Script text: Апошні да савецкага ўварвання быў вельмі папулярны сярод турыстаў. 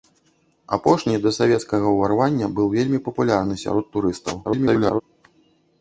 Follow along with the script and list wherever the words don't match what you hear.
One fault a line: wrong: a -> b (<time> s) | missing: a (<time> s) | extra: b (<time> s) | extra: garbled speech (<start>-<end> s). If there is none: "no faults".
extra: garbled speech (4.4-5.0 s)